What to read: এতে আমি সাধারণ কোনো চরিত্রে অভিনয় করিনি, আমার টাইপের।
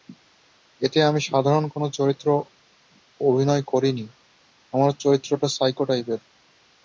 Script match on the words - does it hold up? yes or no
no